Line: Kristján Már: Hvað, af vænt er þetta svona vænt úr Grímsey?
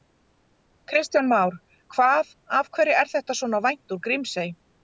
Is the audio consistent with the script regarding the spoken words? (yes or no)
no